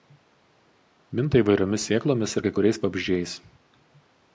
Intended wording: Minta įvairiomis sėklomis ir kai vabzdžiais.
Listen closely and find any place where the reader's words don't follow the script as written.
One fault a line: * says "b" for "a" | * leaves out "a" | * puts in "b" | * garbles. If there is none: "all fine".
* puts in "kuriais"